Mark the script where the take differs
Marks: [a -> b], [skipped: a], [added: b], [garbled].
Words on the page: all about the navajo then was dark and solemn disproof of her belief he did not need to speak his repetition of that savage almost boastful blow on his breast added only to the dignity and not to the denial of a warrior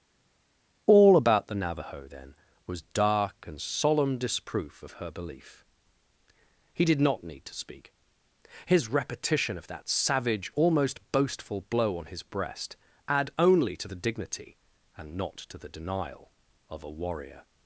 all about the navajo then was dark and solemn disproof of her belief he did not need to speak his repetition of that savage almost boastful blow on his breast [added -> add] only to the dignity and not to the denial of a warrior